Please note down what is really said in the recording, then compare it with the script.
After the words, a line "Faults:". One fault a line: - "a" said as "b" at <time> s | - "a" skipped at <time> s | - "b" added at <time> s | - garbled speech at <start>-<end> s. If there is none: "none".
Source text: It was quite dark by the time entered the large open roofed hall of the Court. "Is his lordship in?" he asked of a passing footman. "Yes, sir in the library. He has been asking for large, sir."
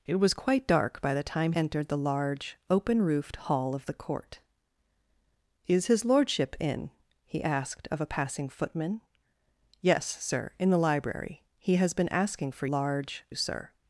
It was quite dark by the time entered the large open roofed hall of the Court. "Is his lordship in?" he asked of a passing footman. "Yes, sir in the library. He has been asking for large, sir."
Faults:
none